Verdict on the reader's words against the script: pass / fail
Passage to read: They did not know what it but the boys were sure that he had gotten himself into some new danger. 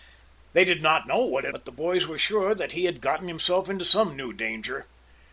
pass